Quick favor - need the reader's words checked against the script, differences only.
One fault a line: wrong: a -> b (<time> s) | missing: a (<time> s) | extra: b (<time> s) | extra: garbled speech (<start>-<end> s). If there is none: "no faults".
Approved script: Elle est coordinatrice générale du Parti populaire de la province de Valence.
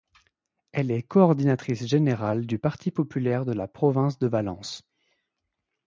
no faults